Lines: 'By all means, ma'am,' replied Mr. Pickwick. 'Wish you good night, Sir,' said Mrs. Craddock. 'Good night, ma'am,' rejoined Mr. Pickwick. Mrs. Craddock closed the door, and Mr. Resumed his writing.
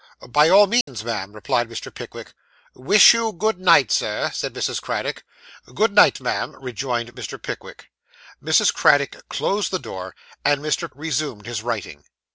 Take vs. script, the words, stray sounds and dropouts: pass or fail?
fail